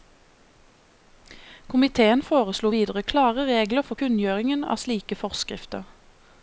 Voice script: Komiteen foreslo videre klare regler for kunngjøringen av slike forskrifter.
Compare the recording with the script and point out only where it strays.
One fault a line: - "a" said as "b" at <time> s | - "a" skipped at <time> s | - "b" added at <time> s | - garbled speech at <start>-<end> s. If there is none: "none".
none